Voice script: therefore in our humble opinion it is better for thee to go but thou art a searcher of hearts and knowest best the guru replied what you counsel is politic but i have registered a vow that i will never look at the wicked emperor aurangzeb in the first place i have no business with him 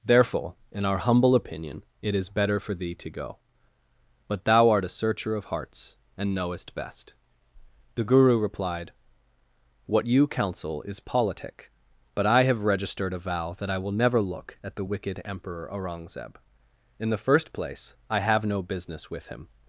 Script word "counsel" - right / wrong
right